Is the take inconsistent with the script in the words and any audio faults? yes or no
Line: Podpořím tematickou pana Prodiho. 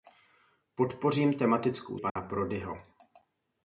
yes